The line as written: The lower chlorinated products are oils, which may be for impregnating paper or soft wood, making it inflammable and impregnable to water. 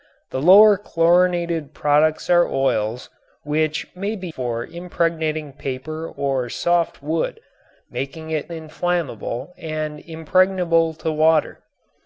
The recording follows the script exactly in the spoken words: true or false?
true